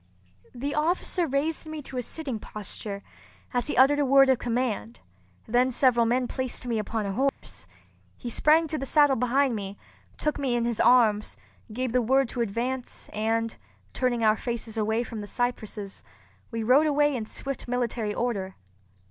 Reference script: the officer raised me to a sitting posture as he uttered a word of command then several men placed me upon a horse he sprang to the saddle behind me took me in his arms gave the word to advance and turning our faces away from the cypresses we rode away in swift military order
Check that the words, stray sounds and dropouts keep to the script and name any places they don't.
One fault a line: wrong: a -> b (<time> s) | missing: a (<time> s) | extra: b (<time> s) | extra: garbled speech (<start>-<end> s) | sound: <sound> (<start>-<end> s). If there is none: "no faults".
sound: dropout (7.3-7.4 s)